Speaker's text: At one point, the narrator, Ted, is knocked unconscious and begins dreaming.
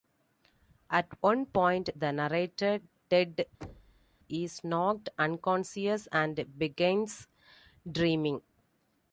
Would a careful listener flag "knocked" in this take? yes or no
no